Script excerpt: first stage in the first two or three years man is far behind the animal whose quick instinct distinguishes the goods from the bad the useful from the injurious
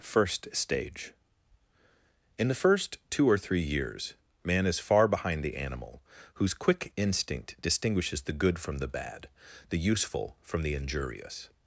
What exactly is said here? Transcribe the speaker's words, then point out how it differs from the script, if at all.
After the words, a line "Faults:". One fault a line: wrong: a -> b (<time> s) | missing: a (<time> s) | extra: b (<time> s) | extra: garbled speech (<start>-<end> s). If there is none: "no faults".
first stage in the first two or three years man is far behind the animal whose quick instinct distinguishes the good from the bad the useful from the injurious
Faults:
wrong: goods -> good (8.3 s)